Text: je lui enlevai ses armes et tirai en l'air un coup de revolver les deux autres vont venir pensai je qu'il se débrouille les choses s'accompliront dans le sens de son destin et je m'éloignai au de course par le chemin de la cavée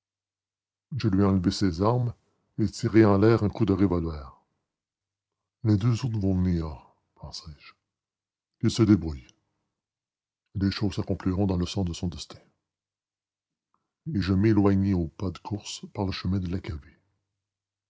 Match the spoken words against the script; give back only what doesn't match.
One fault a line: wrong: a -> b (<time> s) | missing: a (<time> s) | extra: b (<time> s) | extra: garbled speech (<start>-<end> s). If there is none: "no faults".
extra: pas (15.1 s)